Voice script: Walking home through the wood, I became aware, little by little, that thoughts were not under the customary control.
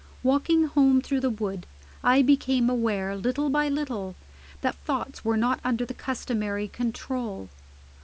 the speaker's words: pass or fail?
pass